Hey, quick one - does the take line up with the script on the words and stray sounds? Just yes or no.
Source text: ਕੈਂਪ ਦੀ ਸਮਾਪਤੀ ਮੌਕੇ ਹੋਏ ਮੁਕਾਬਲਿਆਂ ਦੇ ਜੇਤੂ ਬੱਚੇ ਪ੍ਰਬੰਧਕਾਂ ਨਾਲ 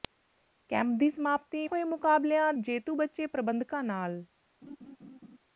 no